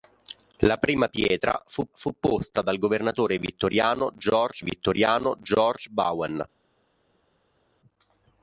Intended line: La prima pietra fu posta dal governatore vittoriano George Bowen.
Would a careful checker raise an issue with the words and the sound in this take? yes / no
yes